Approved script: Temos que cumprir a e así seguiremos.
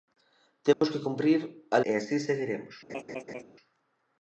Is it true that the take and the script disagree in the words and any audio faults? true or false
true